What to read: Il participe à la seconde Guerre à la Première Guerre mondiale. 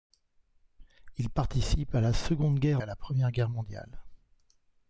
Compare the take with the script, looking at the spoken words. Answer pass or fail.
pass